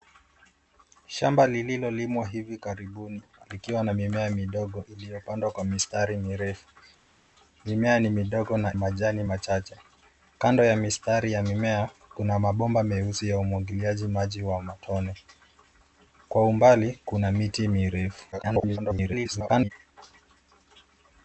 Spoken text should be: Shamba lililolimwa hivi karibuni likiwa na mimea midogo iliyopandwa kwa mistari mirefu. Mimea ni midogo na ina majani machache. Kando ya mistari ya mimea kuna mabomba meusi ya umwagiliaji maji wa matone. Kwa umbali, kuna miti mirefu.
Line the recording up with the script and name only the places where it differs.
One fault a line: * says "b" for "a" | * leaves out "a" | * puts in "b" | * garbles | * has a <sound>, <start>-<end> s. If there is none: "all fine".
* leaves out "ina"
* garbles